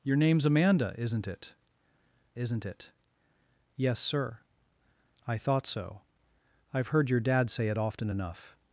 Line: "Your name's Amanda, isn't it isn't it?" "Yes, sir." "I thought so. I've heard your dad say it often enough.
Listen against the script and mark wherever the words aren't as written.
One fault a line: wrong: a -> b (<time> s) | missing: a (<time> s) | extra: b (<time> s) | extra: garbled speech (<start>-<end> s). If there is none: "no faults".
no faults